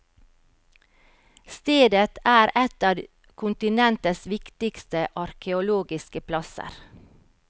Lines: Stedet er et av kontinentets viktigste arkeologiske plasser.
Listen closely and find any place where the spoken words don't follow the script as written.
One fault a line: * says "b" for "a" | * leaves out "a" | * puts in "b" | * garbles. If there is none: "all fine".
all fine